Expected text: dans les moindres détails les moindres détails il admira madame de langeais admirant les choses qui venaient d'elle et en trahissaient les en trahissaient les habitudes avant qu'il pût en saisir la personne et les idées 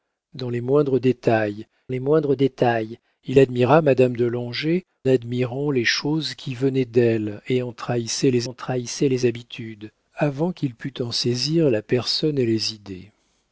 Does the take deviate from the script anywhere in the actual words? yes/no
no